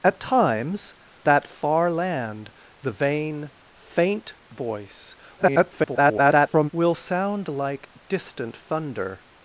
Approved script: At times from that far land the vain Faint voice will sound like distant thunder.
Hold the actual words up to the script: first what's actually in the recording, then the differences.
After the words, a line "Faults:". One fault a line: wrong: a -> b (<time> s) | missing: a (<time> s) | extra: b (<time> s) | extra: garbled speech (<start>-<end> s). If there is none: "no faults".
At times that far land the vain Faint voice [garbled] will sound like distant thunder.
Faults:
missing: from (0.9 s)
extra: garbled speech (5.4-6.7 s)